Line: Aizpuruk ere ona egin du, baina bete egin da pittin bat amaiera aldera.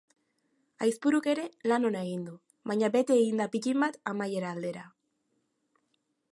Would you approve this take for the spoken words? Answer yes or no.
no